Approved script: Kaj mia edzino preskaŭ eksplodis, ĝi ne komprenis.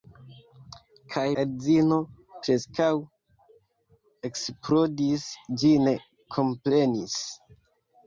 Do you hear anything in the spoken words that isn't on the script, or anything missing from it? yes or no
yes